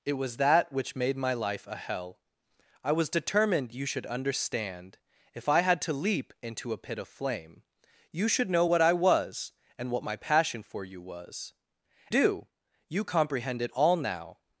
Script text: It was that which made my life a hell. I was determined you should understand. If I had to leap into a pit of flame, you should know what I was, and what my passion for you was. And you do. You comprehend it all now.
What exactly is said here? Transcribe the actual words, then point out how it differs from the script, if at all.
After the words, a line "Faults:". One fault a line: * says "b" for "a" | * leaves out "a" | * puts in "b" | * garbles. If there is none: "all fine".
It was that which made my life a hell. I was determined you should understand. If I had to leap into a pit of flame, you should know what I was, and what my passion for you was. Do. You comprehend it all now.
Faults:
* leaves out "And you"